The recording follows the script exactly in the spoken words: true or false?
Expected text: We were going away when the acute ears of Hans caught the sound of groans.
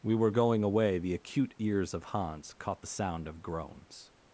false